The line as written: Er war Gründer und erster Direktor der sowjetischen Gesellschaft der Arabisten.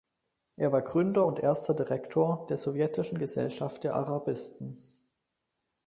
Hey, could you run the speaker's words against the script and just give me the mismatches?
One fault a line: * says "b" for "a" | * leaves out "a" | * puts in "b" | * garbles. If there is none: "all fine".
all fine